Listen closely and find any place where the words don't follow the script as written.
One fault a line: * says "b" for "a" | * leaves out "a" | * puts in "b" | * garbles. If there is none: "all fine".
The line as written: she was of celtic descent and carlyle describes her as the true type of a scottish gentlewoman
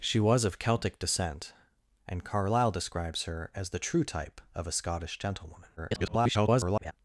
* garbles